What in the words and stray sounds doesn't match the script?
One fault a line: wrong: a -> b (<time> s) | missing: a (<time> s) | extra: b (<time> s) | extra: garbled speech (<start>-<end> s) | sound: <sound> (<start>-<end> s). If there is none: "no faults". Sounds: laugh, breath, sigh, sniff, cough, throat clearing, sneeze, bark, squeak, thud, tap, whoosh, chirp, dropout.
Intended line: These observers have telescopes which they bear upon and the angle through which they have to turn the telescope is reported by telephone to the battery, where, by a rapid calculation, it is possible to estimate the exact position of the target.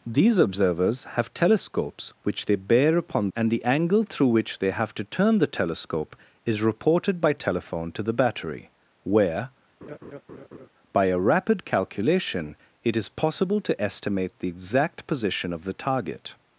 sound: laugh (9.8-10.7 s)